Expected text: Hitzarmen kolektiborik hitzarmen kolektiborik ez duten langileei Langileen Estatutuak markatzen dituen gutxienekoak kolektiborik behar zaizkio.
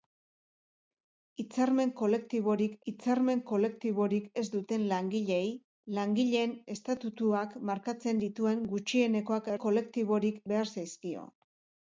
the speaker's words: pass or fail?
pass